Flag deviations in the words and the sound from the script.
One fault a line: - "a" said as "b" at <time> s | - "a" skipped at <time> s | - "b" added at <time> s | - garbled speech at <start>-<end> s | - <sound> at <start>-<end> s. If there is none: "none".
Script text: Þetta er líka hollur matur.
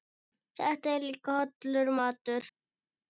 none